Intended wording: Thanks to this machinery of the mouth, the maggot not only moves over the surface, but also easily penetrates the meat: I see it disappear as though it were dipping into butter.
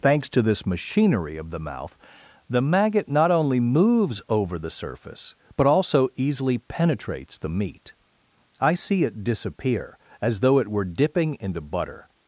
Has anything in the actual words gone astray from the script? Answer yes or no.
no